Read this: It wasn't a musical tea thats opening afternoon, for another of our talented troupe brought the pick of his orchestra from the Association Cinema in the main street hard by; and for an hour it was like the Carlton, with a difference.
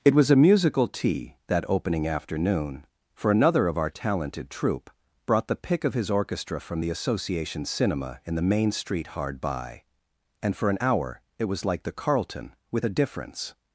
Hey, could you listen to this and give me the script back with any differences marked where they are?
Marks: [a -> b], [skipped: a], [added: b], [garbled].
It [wasn't -> was] a musical tea [thats -> that] opening afternoon, for another of our talented troupe brought the pick of his orchestra from the Association Cinema in the main street hard by; and for an hour it was like the Carlton, with a difference.